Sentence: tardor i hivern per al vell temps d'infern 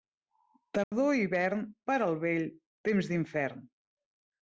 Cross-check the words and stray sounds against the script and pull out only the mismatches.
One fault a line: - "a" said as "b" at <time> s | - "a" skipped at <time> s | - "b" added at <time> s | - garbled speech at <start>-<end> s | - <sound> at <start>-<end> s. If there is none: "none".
- dropout at 0.8-0.9 s